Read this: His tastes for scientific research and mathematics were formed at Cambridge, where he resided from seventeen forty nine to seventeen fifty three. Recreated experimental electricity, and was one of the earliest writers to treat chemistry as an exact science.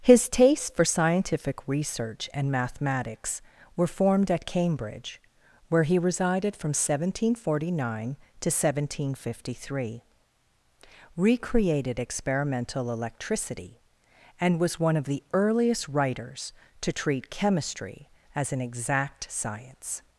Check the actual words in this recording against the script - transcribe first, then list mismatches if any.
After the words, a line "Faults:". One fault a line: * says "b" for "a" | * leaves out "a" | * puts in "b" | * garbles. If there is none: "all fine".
His tastes for scientific research and mathematics were formed at Cambridge, where he resided from seventeen forty nine to seventeen fifty three. Recreated experimental electricity, and was one of the earliest writers to treat chemistry as an exact science.
Faults:
all fine